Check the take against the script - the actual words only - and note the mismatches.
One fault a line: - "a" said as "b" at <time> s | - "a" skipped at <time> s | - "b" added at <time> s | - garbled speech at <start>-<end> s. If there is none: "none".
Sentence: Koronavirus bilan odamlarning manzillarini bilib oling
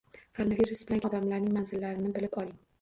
none